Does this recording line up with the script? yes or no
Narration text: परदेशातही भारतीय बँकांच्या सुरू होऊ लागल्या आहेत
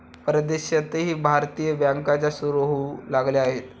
yes